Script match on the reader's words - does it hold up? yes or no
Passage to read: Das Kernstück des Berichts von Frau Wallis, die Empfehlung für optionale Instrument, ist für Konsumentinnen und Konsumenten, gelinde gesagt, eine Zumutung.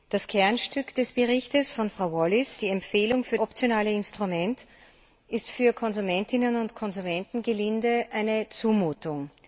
yes